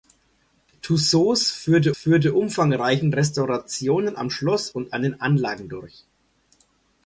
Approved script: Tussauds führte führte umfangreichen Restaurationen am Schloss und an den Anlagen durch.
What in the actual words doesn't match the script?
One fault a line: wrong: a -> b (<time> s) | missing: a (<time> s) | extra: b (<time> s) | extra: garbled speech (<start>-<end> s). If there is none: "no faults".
no faults